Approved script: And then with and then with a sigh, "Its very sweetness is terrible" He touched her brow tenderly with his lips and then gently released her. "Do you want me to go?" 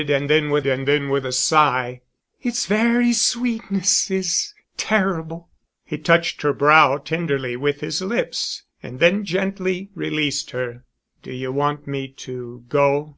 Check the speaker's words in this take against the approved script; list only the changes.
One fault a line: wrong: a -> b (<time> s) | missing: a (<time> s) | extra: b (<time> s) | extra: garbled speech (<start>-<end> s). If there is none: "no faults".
no faults